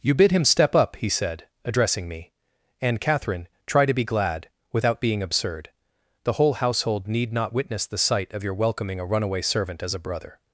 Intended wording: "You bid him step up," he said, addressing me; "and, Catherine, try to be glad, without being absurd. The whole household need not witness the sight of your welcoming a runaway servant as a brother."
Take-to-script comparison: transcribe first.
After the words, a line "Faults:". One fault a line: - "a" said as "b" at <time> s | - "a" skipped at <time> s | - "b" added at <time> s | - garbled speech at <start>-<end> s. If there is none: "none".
"You bid him step up," he said, addressing me; "and, Catherine, try to be glad, without being absurd. The whole household need not witness the sight of your welcoming a runaway servant as a brother."
Faults:
none